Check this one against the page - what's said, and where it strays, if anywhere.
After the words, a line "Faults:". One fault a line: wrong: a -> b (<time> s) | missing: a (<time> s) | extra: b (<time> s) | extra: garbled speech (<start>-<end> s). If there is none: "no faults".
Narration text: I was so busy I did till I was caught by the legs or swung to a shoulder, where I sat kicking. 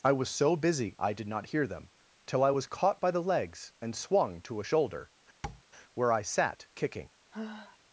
I was so busy I did not hear them till I was caught by the legs and swung to a shoulder, where I sat kicking.
Faults:
extra: not hear them (1.3 s)
wrong: or -> and (3.8 s)